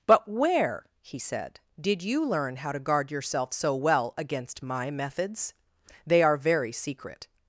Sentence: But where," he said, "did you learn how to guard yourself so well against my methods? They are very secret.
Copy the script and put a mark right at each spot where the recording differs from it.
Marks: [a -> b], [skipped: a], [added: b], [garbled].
But where," he said, "did you learn how to guard yourself so well against my methods? They are very secret.